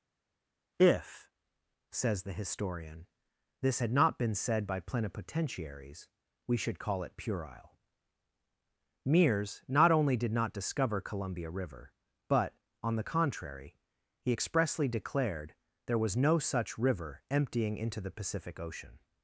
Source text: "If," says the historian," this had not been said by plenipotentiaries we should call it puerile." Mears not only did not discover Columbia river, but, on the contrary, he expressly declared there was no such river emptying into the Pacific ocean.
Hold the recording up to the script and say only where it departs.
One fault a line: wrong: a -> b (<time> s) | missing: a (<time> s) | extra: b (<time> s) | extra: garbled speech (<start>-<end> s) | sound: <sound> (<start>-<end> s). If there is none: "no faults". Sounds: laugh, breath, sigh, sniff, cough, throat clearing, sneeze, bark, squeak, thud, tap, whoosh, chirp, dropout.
no faults